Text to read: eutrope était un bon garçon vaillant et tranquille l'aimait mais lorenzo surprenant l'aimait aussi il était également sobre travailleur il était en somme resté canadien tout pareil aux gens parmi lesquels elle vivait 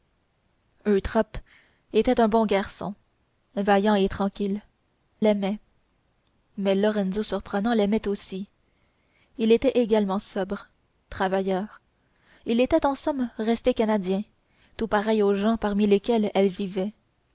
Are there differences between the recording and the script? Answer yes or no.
no